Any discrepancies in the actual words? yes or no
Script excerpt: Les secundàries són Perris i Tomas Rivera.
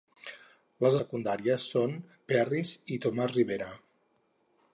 no